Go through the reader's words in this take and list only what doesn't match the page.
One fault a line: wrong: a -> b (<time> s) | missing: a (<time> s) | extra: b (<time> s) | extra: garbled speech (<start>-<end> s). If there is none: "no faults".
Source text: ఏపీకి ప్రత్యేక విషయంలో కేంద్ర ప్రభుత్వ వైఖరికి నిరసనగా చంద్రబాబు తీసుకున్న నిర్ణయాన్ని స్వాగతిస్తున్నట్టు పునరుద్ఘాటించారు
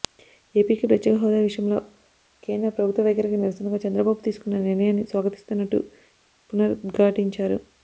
extra: హోదా (1.2 s)